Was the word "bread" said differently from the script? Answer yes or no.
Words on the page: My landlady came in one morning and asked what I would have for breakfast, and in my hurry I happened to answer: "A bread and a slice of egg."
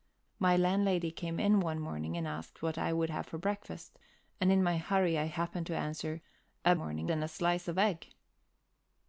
yes